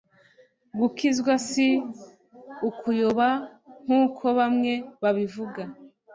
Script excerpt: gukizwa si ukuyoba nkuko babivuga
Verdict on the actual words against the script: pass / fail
fail